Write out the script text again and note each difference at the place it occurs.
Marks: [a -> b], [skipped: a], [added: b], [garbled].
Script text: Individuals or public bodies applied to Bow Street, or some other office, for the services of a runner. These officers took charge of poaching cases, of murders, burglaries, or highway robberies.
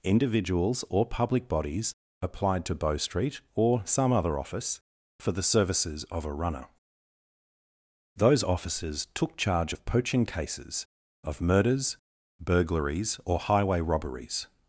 Individuals or public bodies applied to Bow Street, or some other office, for the services of a runner. [These -> Those] officers took charge of poaching cases, of murders, burglaries, or highway robberies.